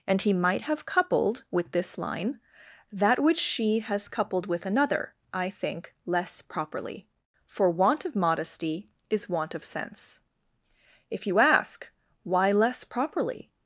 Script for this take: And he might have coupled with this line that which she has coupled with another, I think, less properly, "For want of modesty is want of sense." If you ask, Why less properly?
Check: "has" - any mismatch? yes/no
no